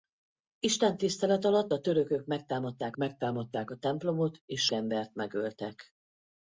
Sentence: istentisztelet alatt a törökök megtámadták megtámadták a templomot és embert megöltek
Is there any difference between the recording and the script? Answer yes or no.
no